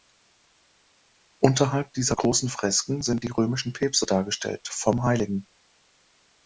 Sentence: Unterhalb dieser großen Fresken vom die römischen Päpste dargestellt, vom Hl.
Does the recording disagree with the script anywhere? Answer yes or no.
yes